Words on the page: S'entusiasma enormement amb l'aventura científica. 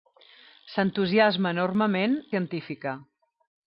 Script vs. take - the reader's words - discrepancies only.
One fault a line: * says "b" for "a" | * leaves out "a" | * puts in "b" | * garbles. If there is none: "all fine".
* leaves out "amb l'aventura"